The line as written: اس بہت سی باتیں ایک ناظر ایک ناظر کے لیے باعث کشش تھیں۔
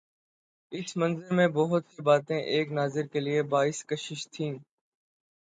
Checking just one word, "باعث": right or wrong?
right